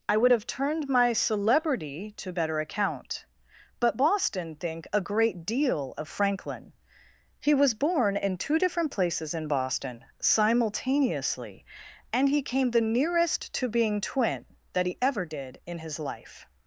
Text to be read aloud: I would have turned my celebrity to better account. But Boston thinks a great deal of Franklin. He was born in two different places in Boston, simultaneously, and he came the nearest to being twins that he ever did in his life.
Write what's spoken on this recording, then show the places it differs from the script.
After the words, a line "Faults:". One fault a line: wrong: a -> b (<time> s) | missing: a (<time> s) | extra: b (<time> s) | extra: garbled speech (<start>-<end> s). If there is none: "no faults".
I would have turned my celebrity to better account. But Boston think a great deal of Franklin. He was born in two different places in Boston, simultaneously, and he came the nearest to being twin that he ever did in his life.
Faults:
wrong: thinks -> think (4.6 s)
wrong: twins -> twin (14.0 s)